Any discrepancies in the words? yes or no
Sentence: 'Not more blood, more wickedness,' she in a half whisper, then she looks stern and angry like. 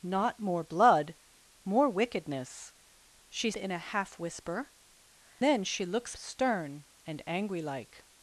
no